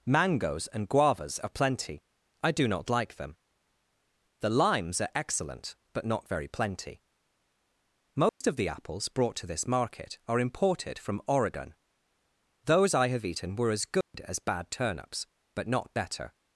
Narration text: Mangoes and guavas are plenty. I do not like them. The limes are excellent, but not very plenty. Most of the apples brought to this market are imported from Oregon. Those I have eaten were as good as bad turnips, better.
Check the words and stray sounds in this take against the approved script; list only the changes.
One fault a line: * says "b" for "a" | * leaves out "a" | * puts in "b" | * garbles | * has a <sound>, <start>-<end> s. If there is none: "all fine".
* has a dropout, 8.3-8.4 s
* has a dropout, 14.0-14.1 s
* puts in "but not"